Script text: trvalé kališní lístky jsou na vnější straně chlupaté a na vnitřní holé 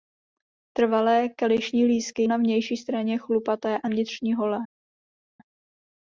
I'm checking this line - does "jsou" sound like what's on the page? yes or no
no